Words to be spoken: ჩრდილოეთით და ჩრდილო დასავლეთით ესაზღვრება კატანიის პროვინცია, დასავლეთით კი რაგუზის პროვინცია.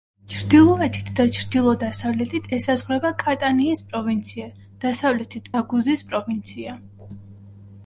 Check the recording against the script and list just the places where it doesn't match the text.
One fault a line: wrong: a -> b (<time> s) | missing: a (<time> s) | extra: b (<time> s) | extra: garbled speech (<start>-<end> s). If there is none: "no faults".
missing: კი (5.6 s)